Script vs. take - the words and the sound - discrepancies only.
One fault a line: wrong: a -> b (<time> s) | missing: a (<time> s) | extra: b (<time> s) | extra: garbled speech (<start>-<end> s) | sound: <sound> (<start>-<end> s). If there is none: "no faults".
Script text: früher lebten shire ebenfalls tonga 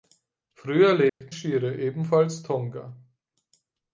sound: dropout (1.1-1.2 s)